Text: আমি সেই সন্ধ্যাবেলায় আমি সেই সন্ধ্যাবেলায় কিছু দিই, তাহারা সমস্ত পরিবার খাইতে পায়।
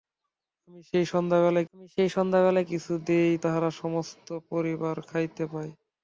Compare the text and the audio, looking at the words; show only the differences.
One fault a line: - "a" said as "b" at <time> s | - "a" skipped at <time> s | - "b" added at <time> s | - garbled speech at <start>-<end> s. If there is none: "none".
none